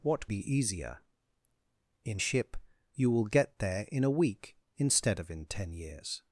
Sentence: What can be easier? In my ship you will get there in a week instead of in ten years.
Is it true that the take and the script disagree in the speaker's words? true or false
true